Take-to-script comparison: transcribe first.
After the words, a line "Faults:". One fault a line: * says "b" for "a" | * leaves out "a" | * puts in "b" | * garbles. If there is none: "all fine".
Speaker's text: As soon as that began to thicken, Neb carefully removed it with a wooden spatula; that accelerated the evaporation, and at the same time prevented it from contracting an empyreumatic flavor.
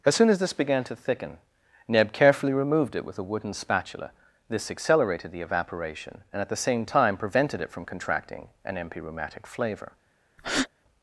As soon as this began to thicken, Neb carefully removed it with a wooden spatula; this accelerated the evaporation, and at the same time prevented it from contracting an empyreumatic flavor.
Faults:
* says "this" for "that"
* says "this" for "that"